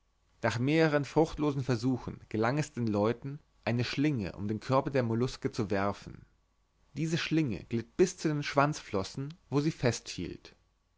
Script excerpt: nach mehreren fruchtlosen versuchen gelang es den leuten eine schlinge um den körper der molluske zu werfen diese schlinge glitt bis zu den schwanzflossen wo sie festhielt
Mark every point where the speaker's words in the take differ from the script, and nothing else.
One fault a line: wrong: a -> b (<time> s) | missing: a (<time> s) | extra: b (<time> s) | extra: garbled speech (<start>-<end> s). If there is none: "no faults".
no faults